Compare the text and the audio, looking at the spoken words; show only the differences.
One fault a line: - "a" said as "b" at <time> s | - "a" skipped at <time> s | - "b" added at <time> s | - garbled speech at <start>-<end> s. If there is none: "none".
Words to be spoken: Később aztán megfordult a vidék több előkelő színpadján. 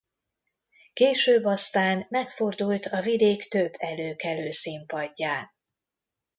none